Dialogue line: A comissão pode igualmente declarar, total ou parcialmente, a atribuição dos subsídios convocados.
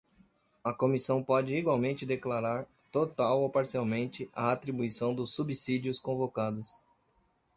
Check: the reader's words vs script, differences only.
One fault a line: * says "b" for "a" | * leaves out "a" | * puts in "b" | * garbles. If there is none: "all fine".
all fine